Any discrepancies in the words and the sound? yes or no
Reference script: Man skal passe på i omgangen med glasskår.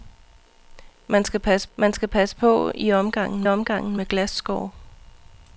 yes